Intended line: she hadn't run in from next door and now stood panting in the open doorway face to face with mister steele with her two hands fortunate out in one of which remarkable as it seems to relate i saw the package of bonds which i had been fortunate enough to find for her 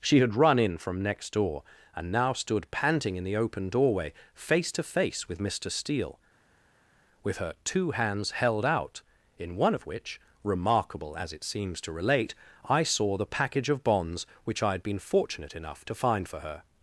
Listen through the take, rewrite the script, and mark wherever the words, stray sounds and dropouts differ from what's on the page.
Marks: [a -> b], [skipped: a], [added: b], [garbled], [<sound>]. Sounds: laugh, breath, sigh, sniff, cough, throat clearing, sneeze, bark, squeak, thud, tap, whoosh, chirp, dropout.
she [hadn't -> had] run in from next door and now stood panting in the open doorway face to face with mister steele with her two hands [fortunate -> held] out in one of which remarkable as it seems to relate i saw the package of bonds which i had been fortunate enough to find for her